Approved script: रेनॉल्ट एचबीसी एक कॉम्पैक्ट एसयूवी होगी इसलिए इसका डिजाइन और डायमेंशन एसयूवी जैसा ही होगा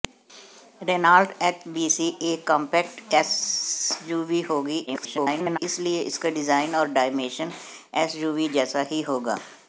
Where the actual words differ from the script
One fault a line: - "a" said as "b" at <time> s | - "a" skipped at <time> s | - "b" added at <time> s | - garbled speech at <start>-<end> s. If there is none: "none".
- garbled speech at 4.9-5.6 s